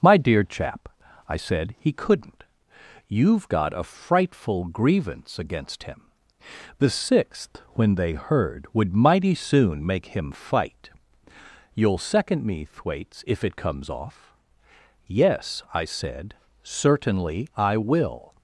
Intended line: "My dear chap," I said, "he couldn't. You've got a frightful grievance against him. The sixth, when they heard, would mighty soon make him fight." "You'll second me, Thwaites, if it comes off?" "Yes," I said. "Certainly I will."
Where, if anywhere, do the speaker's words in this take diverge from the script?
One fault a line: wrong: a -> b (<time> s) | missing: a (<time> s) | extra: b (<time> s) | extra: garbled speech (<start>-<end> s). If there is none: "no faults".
no faults